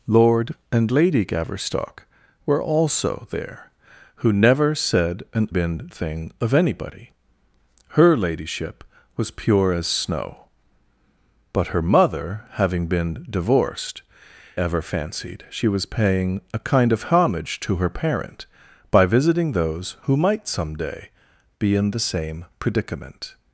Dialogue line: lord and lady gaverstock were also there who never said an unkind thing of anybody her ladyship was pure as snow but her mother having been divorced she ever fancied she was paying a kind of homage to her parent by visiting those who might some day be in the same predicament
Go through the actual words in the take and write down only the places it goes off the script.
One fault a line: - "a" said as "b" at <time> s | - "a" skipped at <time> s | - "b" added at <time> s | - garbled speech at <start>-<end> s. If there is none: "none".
- "unkind" said as "been" at 5.5 s
- "she" skipped at 14.0 s